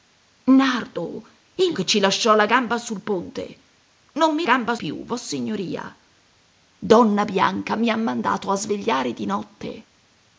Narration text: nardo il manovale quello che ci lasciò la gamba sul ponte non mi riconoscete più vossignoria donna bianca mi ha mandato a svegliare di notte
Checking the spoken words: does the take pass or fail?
fail